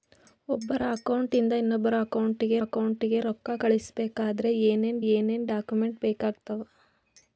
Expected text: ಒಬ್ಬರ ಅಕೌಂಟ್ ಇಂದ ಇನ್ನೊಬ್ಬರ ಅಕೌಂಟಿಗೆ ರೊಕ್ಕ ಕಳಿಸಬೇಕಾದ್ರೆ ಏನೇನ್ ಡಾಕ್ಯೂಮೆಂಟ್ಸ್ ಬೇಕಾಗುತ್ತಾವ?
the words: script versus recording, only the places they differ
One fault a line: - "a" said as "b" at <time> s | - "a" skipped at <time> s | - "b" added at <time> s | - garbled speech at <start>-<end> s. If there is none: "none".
- "ಅಕೌಂಟಿಗೆ" added at 2.6 s
- "ಏನೇನ್" added at 5.1 s